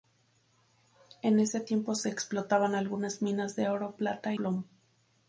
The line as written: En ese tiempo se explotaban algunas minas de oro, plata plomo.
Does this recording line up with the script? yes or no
yes